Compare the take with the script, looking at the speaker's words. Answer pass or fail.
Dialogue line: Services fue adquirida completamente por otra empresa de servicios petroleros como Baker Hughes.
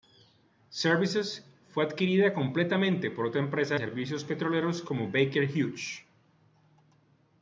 fail